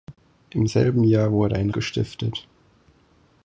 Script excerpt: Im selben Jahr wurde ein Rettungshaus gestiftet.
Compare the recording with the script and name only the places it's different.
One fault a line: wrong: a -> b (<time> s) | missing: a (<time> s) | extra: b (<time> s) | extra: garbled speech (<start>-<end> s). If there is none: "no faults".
missing: Rettungshaus (1.7 s)